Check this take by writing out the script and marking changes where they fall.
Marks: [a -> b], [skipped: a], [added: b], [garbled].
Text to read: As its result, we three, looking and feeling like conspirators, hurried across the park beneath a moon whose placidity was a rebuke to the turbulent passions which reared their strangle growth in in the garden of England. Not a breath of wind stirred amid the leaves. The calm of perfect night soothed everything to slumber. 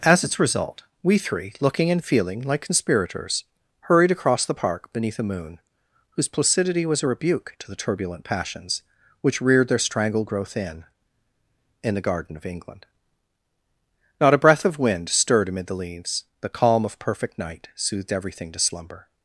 As its result, we three, looking and feeling like conspirators, hurried across the park beneath a moon whose placidity was a rebuke to the turbulent passions which reared their strangle growth in in the garden of England. Not a breath of wind stirred amid the leaves. The calm of perfect night soothed everything to slumber.